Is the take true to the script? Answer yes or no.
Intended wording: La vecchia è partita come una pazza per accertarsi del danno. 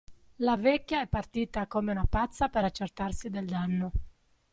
yes